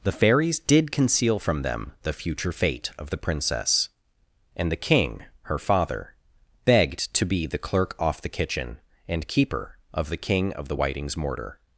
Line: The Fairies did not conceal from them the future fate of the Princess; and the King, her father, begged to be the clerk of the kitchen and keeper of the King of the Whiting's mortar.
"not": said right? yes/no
no